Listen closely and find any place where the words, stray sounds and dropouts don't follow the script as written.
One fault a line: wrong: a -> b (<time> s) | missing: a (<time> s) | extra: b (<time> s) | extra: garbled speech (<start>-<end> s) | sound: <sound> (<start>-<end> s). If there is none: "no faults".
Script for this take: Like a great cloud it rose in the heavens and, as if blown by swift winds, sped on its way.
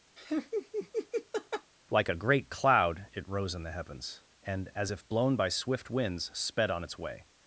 sound: laugh (0.2-1.7 s)